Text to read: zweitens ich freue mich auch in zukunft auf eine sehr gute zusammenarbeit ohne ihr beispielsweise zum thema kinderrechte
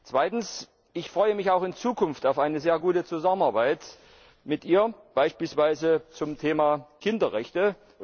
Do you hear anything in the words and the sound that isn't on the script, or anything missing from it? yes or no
yes